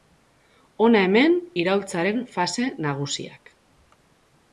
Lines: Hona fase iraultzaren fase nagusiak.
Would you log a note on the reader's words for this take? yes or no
yes